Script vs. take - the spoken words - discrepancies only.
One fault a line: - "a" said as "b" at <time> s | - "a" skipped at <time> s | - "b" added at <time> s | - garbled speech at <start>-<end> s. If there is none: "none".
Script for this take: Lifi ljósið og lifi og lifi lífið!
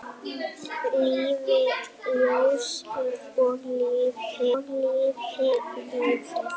none